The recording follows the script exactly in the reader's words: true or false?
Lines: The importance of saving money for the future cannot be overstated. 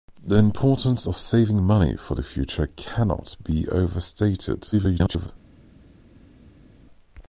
false